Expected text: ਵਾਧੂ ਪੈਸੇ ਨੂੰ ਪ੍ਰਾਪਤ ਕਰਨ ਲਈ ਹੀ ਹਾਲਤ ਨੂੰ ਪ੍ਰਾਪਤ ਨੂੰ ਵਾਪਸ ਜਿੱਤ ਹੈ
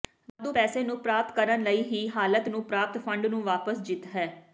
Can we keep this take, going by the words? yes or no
no